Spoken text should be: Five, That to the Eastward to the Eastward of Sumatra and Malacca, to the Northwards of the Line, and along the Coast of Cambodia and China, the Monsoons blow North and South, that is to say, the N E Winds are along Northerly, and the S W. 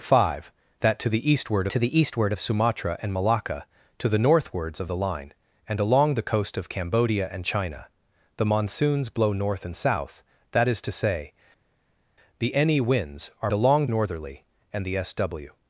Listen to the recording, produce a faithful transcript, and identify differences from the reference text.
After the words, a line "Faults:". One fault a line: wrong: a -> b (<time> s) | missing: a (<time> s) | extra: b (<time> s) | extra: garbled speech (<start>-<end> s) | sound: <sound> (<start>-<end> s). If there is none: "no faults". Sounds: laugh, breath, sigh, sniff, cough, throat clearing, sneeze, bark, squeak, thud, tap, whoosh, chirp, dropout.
Five, That to the Eastward to the Eastward of Sumatra and Malacca, to the Northwards of the Line, and along the Coast of Cambodia and China, the Monsoons blow North and South, that is to say, the N E Winds are along Northerly, and the S W.
Faults:
no faults